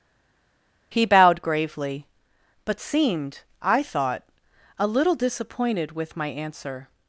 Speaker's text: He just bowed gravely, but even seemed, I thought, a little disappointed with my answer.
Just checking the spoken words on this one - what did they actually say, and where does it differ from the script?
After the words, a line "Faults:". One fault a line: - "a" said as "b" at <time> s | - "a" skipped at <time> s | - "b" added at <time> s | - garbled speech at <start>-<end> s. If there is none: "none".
He bowed gravely, but seemed, I thought, a little disappointed with my answer.
Faults:
- "just" skipped at 1.1 s
- "even" skipped at 2.8 s